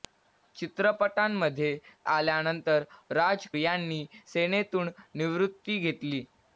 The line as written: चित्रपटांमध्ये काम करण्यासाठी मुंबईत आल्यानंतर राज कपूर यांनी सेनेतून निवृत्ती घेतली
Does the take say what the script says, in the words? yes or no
no